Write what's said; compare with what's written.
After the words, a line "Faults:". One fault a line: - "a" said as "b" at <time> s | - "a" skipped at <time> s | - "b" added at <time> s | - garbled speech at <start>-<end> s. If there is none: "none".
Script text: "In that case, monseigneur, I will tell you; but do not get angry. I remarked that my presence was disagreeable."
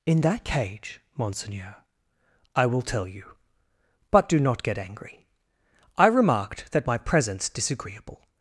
"In that cage, monseigneur, I will tell you; but do not get angry. I remarked that my presence disagreeable."
Faults:
- "case" said as "cage" at 0.4 s
- "was" skipped at 7.5 s